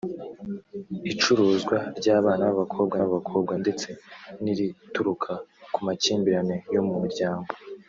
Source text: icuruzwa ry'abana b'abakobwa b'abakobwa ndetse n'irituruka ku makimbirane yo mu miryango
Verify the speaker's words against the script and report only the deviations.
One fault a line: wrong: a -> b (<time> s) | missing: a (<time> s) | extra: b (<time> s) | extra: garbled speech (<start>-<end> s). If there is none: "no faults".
no faults